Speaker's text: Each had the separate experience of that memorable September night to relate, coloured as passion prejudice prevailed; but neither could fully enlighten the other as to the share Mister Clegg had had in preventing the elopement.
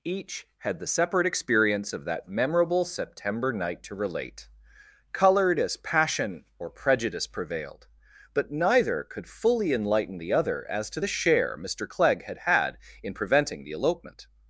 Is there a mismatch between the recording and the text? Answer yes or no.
yes